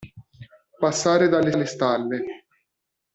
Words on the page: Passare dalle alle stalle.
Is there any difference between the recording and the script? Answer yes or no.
no